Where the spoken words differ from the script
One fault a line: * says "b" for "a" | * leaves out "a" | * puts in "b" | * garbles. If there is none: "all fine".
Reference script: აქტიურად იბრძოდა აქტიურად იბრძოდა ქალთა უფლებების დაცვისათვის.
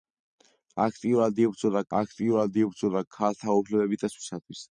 all fine